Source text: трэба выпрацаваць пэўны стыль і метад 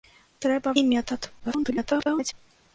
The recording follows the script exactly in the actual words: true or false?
false